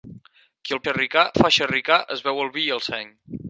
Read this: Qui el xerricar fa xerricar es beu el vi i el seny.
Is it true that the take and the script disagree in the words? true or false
false